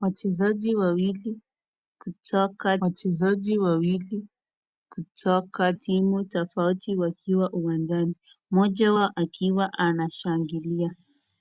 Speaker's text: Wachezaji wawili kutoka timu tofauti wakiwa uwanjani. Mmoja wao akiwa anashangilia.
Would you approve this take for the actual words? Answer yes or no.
no